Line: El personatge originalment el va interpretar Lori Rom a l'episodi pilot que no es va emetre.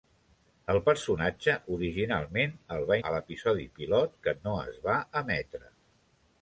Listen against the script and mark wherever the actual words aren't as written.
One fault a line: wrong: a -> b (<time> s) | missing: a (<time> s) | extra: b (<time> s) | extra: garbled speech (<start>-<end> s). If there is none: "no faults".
missing: interpretar Lori Rom (3.0 s)